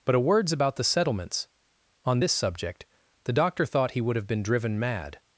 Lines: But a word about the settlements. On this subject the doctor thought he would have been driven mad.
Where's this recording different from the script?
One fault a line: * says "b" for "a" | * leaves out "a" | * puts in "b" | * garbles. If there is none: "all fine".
* says "words" for "word"